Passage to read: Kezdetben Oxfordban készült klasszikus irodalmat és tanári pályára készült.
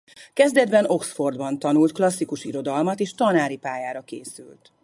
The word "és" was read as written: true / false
true